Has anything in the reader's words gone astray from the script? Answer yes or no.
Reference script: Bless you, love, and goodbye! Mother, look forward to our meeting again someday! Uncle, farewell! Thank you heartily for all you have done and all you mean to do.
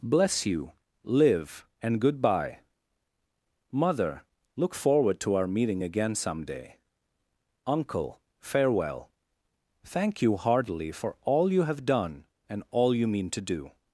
yes